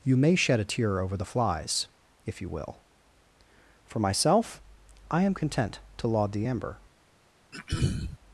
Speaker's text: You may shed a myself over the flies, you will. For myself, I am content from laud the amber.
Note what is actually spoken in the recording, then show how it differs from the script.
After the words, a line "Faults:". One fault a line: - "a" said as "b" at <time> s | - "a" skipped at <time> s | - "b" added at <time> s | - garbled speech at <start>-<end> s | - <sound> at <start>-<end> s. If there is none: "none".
You may shed a tear over the flies, if you will. For myself, I am content to laud the amber.
Faults:
- "myself" said as "tear" at 0.7 s
- "if" added at 2.3 s
- "from" said as "to" at 6.0 s
- throat clearing at 7.5-8.2 s